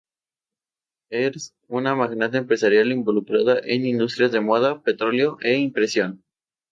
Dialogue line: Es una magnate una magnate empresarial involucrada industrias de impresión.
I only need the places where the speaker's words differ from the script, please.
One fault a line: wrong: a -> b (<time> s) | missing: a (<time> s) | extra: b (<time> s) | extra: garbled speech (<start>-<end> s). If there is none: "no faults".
missing: una magnate (2.4 s)
extra: en (3.6 s)
extra: moda petróleo e (4.4 s)